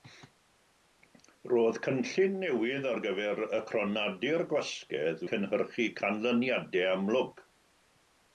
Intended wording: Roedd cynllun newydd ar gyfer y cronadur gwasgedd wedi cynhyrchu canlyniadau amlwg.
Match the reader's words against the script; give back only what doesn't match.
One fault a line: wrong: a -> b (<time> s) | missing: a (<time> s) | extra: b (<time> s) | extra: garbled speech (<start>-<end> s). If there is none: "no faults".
missing: wedi (5.3 s)